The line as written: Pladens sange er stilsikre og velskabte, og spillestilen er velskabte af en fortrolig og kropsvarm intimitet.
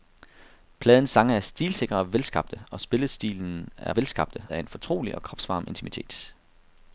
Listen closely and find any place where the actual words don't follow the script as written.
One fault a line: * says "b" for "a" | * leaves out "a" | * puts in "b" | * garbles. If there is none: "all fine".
all fine